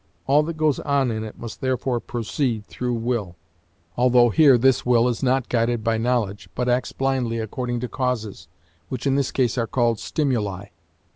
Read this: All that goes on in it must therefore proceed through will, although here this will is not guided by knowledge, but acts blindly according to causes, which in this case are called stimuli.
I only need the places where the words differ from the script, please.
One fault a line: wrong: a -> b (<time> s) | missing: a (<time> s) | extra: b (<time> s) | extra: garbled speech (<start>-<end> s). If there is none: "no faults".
no faults